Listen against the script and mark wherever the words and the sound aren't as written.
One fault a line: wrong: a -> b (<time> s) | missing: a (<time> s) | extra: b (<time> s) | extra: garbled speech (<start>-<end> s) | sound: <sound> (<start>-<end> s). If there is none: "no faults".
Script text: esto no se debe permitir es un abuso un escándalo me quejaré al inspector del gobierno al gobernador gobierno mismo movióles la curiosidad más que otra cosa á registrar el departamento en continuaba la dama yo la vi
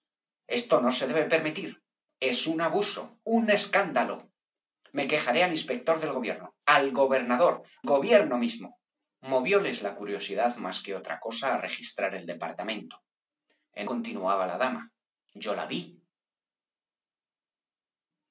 no faults